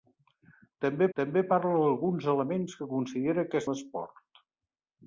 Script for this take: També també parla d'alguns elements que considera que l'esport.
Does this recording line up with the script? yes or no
yes